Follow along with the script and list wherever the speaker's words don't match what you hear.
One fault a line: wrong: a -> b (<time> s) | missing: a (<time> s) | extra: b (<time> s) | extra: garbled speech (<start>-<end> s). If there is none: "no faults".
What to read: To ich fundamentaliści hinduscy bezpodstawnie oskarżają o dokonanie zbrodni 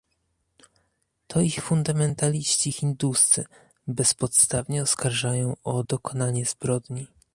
no faults